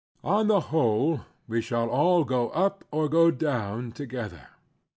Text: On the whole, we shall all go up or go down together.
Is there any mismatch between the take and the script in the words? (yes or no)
no